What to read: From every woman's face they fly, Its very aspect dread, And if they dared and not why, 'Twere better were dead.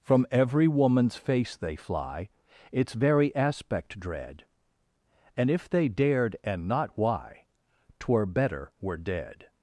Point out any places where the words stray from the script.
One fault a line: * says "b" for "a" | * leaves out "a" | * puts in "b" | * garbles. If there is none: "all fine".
all fine